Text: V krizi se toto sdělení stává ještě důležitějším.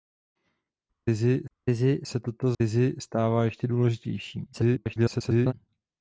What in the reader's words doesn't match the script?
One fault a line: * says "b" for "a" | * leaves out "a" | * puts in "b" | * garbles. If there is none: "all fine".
* puts in "v krizi"
* says "krizi" for "sdělení"
* garbles